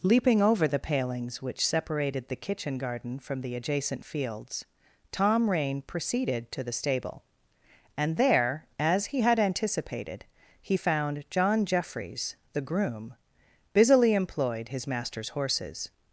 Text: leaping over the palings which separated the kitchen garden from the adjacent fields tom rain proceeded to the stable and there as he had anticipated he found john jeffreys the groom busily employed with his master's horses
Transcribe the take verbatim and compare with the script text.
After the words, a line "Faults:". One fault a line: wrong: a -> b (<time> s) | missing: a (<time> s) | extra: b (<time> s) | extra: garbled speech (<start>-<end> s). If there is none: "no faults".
leaping over the palings which separated the kitchen garden from the adjacent fields tom rain proceeded to the stable and there as he had anticipated he found john jeffreys the groom busily employed his master's horses
Faults:
missing: with (14.7 s)